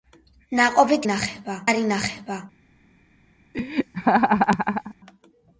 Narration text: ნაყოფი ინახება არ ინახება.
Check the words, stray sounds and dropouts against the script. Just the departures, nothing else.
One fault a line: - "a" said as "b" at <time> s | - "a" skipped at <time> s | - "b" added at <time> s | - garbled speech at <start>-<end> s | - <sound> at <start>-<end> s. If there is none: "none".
- laugh at 3.5-4.9 s